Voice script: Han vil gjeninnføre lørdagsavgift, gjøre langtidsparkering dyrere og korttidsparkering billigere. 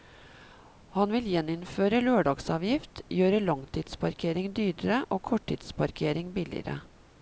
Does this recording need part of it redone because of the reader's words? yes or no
no